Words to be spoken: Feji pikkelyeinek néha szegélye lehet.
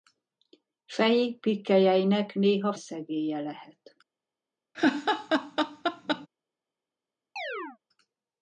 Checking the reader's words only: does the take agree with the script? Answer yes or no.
yes